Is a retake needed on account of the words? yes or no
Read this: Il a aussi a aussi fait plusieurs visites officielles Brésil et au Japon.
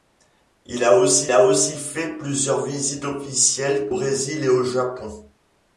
no